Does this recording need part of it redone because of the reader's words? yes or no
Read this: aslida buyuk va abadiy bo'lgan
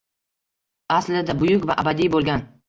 no